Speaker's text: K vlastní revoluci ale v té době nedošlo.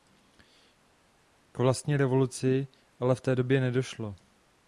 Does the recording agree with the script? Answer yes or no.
yes